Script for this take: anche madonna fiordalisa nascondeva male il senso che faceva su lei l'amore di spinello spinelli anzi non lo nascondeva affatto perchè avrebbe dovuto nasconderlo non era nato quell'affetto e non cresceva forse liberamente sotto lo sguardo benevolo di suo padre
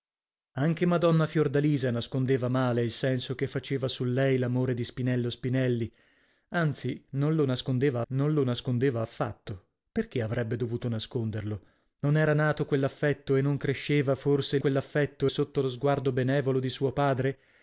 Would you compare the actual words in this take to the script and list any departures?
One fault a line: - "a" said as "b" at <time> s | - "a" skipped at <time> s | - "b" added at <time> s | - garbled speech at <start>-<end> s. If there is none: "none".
- "non lo nascondeva" added at 8.1 s
- "liberamente" said as "quell'affetto" at 14.6 s